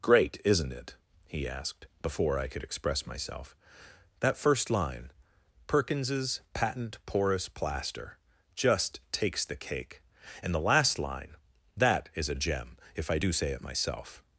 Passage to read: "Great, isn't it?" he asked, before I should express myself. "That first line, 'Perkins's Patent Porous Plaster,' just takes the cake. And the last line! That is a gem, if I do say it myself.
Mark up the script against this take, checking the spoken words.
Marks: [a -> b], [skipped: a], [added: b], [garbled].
"Great, isn't it?" he asked, before I [should -> could] express myself. "That first line, 'Perkins's Patent Porous Plaster,' just takes the cake. And the last line! That is a gem, if I do say it myself.